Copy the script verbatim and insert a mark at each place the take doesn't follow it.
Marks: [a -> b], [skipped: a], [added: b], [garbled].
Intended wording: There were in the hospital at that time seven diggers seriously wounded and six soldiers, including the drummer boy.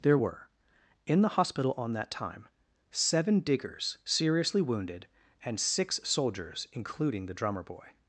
There were in the hospital [at -> on] that time seven diggers seriously wounded and six soldiers, including the drummer boy.